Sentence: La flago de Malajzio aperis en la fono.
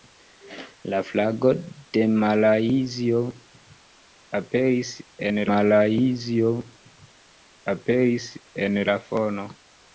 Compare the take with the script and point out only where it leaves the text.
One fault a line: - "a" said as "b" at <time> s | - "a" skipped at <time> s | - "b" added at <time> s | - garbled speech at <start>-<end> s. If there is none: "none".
- "Malajzio aperis en" added at 5.5 s